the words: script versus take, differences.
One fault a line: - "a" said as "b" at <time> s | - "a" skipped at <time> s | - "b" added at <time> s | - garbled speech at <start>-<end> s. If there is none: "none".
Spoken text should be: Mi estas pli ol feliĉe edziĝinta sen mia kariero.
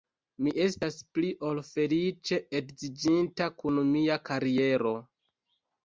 - "sen" said as "kun" at 3.6 s